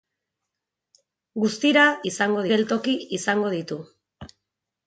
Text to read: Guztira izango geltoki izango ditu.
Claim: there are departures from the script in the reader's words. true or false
false